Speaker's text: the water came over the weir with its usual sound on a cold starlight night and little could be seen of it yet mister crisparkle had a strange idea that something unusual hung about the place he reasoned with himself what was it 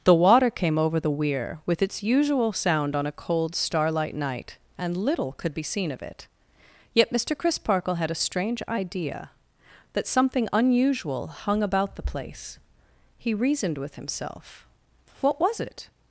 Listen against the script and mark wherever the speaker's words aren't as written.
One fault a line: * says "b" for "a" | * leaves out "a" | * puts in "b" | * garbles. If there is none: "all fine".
all fine